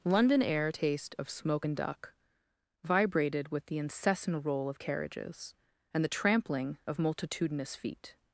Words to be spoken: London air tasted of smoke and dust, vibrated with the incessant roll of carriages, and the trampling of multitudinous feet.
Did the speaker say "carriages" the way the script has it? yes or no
yes